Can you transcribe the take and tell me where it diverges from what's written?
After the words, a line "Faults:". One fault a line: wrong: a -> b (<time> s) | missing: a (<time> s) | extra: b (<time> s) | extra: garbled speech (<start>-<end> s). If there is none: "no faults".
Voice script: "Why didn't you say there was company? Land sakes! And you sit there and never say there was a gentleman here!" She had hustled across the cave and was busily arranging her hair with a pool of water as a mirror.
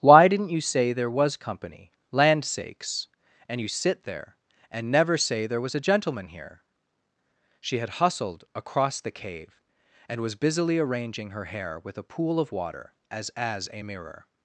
"Why didn't you say there was company? Land sakes! And you sit there and never say there was a gentleman here!" She had hustled across the cave and was busily arranging her hair with a pool of water as as a mirror.
Faults:
extra: as (13.3 s)